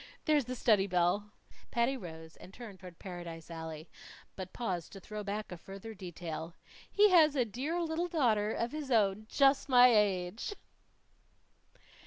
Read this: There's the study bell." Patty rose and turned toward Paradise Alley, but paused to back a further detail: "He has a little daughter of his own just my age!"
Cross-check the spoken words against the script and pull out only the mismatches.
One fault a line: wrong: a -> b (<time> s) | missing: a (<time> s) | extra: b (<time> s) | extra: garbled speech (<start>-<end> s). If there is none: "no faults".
extra: throw (5.0 s)
extra: dear (7.5 s)